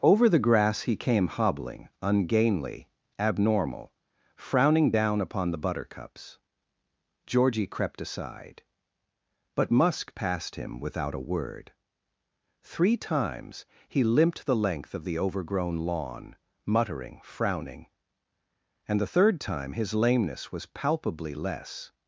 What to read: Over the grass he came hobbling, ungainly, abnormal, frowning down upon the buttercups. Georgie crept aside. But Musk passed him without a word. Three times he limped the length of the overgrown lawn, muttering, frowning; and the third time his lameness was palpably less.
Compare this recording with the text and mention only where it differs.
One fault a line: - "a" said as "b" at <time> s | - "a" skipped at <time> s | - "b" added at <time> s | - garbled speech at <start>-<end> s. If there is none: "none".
none